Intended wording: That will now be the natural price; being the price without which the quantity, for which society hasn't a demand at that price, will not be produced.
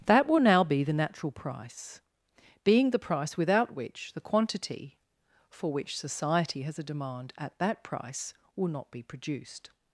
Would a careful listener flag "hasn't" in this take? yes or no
yes